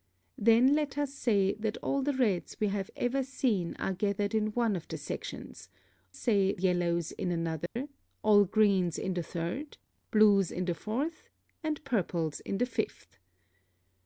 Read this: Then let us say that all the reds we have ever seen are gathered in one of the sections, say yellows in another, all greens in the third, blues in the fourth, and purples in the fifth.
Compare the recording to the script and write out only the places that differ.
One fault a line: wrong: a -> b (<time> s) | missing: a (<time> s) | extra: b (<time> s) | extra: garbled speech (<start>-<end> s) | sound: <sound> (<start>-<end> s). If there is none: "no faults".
sound: dropout (7.7-7.8 s)